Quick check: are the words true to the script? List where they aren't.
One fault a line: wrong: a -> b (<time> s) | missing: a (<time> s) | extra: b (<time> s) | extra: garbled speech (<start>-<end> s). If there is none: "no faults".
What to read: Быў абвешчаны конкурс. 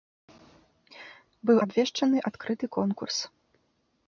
extra: адкрыты (2.3 s)